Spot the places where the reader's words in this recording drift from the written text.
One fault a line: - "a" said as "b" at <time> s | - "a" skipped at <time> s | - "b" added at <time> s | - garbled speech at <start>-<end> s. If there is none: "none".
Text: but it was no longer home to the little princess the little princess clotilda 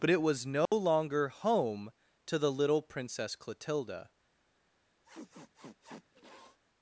- "the little princess" skipped at 3.4 s